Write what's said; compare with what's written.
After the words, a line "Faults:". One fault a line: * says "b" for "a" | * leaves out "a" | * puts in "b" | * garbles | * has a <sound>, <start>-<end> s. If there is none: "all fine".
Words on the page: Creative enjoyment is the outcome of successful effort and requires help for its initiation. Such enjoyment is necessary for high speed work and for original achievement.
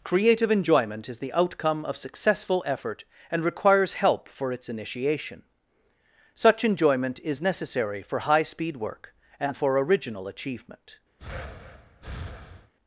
Creative enjoyment is the outcome of successful effort and requires help for its initiation. Such enjoyment is necessary for high speed work and for original achievement.
Faults:
* has a breath, 11.2-12.7 s